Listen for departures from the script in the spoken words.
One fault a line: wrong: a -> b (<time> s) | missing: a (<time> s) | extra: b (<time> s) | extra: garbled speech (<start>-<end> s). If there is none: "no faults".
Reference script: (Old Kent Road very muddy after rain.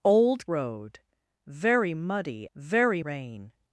missing: Kent (0.5 s)
wrong: after -> very (2.6 s)